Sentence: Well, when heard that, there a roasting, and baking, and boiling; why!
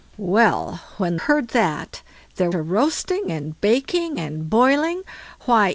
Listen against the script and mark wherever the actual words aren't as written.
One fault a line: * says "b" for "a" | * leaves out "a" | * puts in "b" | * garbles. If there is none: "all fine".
all fine